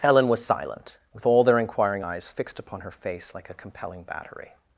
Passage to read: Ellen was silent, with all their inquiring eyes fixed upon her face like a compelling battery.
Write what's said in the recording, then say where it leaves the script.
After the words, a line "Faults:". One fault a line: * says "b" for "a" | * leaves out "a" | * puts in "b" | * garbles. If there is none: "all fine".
Helen was silent, with all their inquiring eyes fixed upon her face like a compelling battery.
Faults:
* says "Helen" for "Ellen"